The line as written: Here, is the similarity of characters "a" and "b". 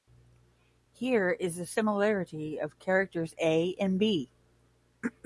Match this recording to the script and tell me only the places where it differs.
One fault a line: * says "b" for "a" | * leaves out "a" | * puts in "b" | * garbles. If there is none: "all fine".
all fine